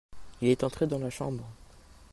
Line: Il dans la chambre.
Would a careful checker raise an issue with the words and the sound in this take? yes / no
yes